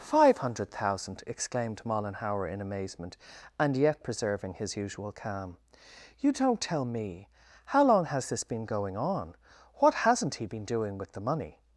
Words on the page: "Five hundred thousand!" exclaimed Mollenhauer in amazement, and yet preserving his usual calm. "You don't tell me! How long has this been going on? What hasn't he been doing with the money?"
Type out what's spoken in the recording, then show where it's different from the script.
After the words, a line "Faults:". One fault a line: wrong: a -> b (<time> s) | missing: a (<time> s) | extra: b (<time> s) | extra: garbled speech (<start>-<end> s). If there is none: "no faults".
"Five hundred thousand!" exclaimed Mollenhauer in amazement, and yet preserving his usual calm. "You don't tell me! How long has this been going on? What hasn't he been doing with the money?"
Faults:
no faults